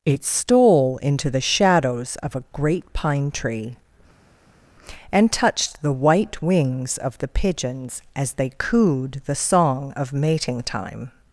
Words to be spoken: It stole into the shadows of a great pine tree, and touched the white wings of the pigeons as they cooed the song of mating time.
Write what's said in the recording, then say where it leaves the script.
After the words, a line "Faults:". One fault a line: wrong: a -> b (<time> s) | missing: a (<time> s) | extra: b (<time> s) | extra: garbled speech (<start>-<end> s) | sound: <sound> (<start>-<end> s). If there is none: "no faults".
It stole into the shadows of a great pine tree, and touched the white wings of the pigeons as they cooed the song of mating time.
Faults:
no faults